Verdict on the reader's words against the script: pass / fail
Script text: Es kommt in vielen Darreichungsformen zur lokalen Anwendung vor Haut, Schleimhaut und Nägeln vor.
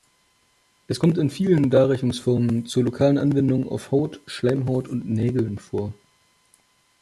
fail